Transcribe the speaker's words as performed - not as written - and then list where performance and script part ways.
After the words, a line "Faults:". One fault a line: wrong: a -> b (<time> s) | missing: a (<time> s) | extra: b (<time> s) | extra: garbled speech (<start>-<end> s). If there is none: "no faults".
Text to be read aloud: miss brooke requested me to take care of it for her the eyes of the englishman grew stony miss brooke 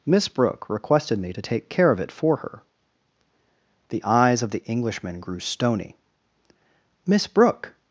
miss brooke requested me to take care of it for her the eyes of the englishman grew stony miss brooke
Faults:
no faults